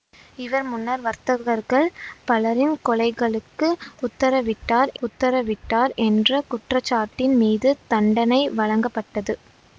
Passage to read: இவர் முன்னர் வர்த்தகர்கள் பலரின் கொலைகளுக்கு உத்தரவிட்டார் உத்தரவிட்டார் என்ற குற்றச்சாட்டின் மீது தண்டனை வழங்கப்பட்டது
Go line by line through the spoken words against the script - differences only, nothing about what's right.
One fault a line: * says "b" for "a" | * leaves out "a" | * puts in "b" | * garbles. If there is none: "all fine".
all fine